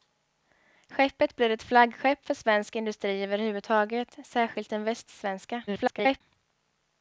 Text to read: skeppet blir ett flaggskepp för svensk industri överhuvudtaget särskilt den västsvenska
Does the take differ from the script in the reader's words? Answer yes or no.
yes